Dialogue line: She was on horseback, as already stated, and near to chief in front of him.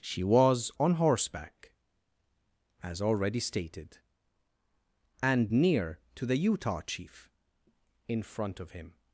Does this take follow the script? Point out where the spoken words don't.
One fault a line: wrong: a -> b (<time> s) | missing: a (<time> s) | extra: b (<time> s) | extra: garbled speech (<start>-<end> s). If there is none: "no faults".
extra: the Utah (6.3 s)